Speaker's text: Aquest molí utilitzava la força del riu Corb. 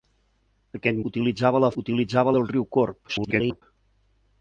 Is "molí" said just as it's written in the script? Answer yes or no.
no